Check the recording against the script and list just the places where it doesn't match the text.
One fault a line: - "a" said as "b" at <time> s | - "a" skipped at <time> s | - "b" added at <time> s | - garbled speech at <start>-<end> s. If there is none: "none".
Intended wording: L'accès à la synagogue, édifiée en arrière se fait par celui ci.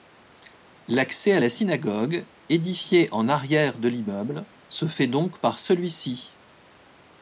- "de l'immeuble" added at 3.8 s
- "donc" added at 5.1 s